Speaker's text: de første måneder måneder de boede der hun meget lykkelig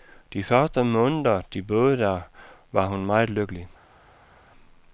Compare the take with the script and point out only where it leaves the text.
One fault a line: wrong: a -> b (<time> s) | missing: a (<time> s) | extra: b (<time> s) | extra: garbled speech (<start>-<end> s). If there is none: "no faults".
missing: måneder (1.4 s)
extra: var (2.7 s)